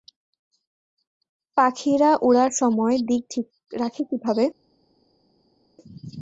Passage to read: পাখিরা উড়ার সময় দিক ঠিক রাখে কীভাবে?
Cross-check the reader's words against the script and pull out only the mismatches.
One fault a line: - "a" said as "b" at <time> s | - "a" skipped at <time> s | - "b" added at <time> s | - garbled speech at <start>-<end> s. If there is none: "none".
none